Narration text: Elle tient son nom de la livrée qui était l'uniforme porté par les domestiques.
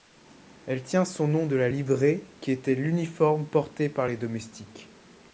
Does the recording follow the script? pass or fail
pass